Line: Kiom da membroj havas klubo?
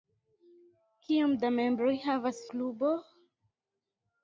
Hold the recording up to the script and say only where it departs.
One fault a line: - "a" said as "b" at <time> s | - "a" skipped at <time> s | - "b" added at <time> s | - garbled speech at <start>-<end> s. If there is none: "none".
none